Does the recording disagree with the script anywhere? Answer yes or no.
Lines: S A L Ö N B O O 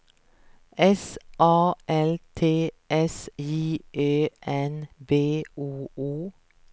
yes